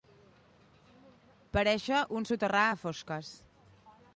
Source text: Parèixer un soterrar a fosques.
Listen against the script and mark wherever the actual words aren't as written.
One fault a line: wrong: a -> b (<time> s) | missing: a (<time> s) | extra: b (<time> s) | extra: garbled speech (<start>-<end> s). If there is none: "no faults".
no faults